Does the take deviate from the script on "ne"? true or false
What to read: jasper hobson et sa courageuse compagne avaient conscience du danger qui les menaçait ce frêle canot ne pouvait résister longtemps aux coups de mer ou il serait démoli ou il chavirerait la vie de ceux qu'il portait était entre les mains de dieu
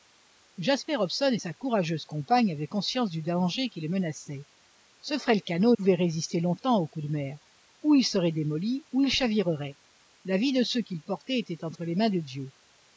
true